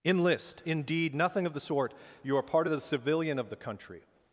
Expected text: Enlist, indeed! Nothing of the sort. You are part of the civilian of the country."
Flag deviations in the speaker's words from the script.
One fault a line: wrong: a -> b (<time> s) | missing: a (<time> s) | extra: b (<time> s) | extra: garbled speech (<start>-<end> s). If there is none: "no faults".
no faults